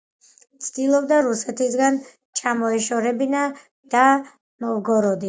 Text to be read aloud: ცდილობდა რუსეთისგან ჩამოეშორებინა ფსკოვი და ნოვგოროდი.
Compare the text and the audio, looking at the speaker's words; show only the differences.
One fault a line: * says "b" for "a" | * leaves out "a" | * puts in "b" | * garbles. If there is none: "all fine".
* leaves out "ფსკოვი"